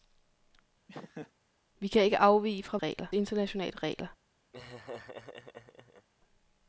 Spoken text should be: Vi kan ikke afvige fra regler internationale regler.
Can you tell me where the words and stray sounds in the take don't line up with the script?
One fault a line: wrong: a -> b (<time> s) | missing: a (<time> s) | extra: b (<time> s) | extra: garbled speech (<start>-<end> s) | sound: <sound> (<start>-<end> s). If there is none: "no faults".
sound: laugh (0.9-1.3 s)
sound: laugh (4.5-6.1 s)